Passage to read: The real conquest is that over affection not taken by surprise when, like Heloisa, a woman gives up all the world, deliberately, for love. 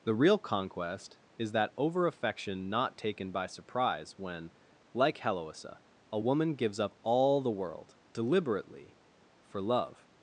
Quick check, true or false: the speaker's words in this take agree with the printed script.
true